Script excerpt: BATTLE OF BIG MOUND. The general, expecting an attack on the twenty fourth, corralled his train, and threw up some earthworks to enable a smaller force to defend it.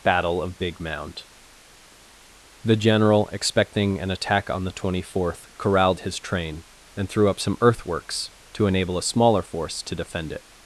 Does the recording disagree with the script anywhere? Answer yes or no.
no